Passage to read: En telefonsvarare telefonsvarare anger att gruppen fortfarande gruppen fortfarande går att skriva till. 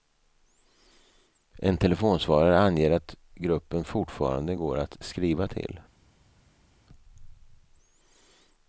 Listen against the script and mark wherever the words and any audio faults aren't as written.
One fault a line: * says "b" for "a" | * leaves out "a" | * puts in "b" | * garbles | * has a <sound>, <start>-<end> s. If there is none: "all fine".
* leaves out "telefonsvarare"
* leaves out "gruppen fortfarande"